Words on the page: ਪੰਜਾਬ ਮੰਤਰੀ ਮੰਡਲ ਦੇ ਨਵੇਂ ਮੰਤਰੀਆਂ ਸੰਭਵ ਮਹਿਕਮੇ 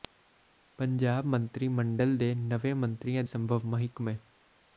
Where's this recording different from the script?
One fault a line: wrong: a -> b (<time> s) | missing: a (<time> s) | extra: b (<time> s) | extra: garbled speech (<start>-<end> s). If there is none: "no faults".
no faults